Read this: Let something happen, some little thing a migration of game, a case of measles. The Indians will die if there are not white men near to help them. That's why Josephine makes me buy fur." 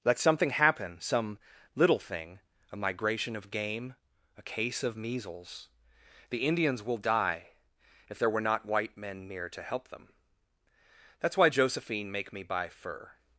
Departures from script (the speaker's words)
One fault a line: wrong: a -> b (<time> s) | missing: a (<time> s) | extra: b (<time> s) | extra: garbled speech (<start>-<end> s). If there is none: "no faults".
wrong: are -> were (8.3 s)
wrong: makes -> make (12.1 s)